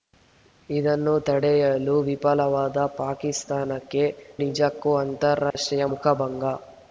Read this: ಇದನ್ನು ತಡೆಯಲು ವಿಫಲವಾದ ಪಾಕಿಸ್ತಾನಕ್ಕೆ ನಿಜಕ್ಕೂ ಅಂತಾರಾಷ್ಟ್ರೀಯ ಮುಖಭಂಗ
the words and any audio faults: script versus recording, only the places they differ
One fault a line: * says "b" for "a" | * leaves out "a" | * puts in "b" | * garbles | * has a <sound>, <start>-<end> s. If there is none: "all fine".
* has a dropout, 5.5-5.6 s